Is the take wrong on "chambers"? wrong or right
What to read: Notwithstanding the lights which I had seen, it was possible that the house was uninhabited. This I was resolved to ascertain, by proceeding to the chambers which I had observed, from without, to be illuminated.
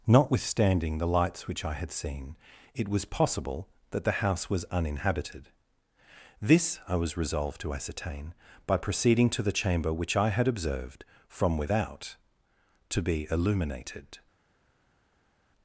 wrong